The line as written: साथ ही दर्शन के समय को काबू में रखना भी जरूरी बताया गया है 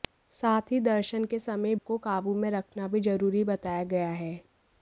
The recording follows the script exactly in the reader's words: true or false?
true